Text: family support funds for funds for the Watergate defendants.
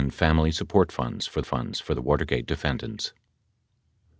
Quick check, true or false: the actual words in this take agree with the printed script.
true